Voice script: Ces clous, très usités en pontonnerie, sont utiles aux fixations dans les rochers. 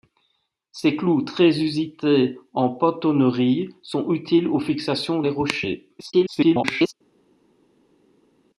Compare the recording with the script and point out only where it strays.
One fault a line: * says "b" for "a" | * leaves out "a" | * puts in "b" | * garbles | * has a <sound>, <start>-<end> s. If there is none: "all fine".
* leaves out "dans"
* garbles